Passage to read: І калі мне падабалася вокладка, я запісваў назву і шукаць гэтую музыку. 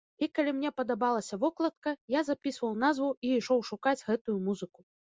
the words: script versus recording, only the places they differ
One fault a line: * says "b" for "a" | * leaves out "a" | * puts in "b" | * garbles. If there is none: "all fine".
* puts in "ішоў"